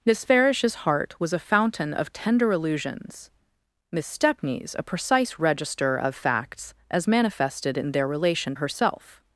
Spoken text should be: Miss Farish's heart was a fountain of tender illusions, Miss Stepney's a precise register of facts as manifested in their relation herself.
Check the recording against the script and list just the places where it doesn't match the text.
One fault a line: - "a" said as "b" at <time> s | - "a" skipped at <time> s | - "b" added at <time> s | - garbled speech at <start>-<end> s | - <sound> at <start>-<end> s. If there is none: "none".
none